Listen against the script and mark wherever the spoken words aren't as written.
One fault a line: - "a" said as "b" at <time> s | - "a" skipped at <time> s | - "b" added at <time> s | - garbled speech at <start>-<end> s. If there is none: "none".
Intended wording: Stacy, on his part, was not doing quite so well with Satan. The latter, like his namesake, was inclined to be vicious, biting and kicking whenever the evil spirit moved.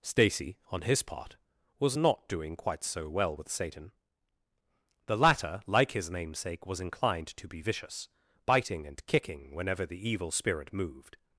none